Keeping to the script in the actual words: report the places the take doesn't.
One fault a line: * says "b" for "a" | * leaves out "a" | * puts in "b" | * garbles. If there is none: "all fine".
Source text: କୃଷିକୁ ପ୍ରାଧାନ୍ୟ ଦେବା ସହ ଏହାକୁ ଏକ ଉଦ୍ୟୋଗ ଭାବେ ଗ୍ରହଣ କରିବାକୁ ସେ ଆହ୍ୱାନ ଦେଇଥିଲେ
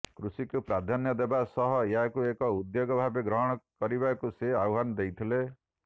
all fine